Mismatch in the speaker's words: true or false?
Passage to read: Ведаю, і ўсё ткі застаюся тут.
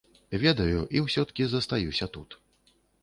false